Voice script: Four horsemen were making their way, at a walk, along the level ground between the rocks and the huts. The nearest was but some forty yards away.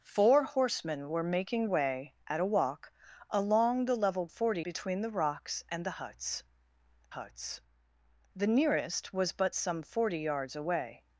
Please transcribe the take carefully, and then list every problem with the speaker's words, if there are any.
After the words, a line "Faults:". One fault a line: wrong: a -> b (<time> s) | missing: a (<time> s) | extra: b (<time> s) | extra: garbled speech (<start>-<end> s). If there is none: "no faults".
Four horsemen were making way, at a walk, along the level forty between the rocks and the huts huts. The nearest was but some forty yards away.
Faults:
missing: their (1.7 s)
wrong: ground -> forty (4.3 s)
extra: huts (7.1 s)